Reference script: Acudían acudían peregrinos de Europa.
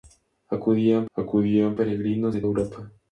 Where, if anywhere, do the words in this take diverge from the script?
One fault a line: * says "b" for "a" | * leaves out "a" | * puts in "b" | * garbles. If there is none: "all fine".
all fine